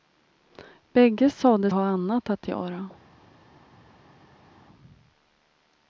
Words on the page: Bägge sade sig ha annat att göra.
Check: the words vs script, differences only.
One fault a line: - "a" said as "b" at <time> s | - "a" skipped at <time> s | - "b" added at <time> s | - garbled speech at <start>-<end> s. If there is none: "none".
- "sig" skipped at 1.7 s